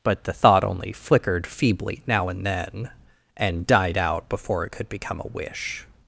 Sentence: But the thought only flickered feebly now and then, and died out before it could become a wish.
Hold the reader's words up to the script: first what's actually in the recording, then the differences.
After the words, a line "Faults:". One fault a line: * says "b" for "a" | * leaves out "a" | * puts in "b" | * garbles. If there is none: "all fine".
But the thought only flickered feebly now and then, and died out before it could become a wish.
Faults:
all fine